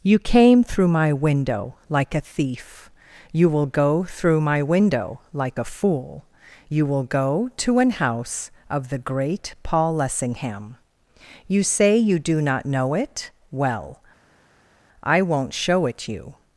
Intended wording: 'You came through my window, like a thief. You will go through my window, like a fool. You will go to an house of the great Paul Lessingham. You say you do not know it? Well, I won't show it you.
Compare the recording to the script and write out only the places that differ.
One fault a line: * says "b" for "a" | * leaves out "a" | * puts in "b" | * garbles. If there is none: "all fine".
all fine